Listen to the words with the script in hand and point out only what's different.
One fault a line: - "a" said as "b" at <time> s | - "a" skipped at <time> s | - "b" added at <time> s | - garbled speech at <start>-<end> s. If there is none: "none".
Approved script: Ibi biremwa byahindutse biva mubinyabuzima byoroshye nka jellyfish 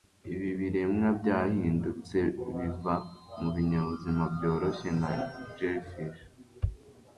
none